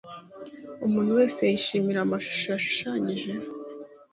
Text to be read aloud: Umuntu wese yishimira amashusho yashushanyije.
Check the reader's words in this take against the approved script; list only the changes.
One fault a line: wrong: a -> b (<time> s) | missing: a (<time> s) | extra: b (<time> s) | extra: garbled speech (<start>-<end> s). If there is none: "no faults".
no faults